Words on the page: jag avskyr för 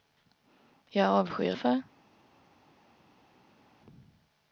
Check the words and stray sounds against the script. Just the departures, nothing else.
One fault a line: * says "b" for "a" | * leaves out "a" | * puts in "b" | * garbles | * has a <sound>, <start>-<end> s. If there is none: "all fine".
all fine